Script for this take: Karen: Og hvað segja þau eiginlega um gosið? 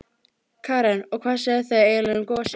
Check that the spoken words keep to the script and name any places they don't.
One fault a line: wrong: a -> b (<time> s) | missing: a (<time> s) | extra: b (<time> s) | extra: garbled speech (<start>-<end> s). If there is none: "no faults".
no faults